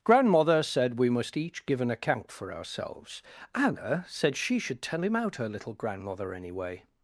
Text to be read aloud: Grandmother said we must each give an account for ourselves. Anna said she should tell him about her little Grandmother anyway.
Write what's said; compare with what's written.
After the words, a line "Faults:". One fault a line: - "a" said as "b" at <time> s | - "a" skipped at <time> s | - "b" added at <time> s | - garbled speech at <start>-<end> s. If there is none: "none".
Grandmother said we must each give an account for ourselves. Anna said she should tell him out her little Grandmother anyway.
Faults:
- "about" said as "out" at 5.1 s